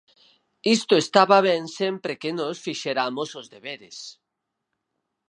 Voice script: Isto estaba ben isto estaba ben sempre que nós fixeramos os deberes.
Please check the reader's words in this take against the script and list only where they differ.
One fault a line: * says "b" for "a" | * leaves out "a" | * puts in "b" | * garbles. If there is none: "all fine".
* leaves out "isto estaba ben"